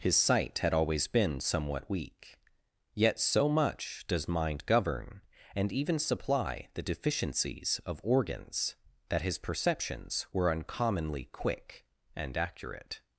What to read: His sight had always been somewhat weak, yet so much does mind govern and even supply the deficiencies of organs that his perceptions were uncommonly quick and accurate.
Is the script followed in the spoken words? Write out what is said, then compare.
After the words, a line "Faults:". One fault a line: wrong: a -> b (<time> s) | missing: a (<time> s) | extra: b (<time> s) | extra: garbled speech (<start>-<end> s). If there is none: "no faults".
His sight had always been somewhat weak, yet so much does mind govern and even supply the deficiencies of organs that his perceptions were uncommonly quick and accurate.
Faults:
no faults